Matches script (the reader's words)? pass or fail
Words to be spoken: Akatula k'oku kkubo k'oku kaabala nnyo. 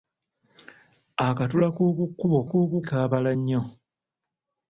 pass